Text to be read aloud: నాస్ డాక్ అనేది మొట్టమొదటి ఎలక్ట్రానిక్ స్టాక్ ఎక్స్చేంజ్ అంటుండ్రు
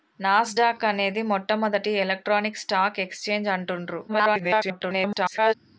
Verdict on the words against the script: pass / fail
fail